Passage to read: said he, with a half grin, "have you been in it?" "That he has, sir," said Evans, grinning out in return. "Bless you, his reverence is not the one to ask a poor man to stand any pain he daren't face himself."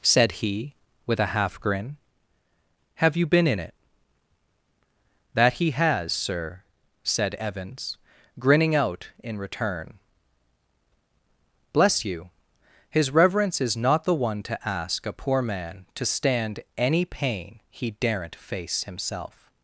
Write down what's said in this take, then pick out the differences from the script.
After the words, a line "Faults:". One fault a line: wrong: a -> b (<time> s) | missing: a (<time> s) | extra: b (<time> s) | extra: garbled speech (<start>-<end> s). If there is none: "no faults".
said he, with a half grin, "have you been in it?" "That he has, sir," said Evans, grinning out in return. "Bless you, his reverence is not the one to ask a poor man to stand any pain he daren't face himself."
Faults:
no faults